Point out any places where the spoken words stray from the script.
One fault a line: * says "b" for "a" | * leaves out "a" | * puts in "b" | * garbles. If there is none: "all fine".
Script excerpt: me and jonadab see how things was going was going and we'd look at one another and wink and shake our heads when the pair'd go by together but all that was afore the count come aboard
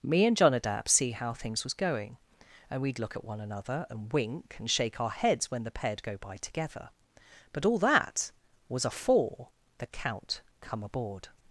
* leaves out "was going"